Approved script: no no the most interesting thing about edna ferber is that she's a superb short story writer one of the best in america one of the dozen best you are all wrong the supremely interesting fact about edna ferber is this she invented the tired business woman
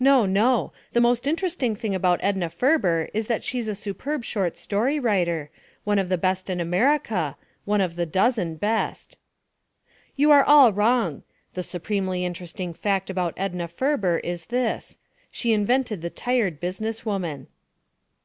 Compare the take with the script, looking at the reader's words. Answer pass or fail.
pass